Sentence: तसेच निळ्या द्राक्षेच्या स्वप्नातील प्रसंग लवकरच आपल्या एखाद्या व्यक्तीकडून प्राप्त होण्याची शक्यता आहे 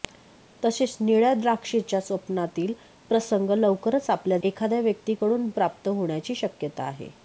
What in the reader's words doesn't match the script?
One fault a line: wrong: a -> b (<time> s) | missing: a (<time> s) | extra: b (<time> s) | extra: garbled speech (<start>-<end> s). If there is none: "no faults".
no faults